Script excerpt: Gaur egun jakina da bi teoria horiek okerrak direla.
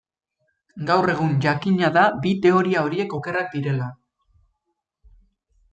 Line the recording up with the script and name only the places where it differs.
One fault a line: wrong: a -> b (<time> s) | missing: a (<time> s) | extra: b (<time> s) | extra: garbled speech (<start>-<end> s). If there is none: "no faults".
no faults